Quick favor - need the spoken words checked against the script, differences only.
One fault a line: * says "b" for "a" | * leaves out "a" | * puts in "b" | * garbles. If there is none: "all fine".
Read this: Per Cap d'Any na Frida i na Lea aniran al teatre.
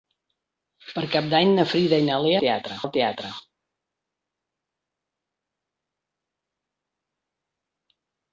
* says "teatre" for "aniran"